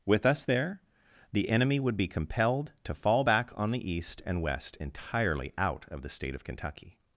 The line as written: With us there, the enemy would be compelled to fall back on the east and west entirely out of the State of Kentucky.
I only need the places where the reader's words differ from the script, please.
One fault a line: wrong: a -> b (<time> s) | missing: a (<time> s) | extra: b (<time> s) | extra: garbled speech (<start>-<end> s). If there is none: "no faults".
no faults